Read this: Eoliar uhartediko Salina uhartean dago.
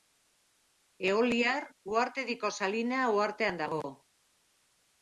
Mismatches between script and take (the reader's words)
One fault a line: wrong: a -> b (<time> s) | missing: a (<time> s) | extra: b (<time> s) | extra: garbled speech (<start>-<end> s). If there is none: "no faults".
no faults